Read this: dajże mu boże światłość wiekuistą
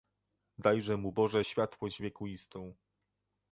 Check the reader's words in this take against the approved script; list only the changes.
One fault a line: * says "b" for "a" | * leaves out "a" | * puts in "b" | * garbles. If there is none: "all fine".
all fine